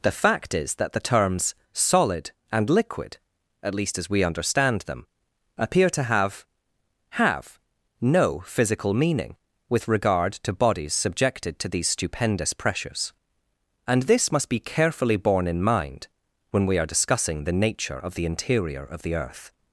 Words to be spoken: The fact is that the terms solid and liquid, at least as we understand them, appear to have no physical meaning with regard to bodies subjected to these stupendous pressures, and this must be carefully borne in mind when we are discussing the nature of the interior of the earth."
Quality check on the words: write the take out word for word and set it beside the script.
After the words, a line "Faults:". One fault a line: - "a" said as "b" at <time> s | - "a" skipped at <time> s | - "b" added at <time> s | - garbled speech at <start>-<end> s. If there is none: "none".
The fact is that the terms solid and liquid, at least as we understand them, appear to have have no physical meaning with regard to bodies subjected to these stupendous pressures, and this must be carefully borne in mind when we are discussing the nature of the interior of the earth."
Faults:
- "have" added at 7.2 s